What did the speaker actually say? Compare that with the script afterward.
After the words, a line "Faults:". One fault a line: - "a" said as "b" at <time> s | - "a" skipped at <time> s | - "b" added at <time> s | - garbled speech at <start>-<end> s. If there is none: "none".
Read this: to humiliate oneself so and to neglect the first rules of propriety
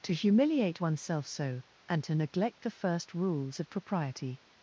to humiliate oneself so and to neglect the first rules of propriety
Faults:
none